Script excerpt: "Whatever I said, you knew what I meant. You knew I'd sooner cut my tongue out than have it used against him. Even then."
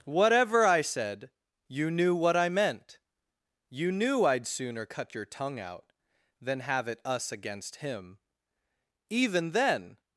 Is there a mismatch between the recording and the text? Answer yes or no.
yes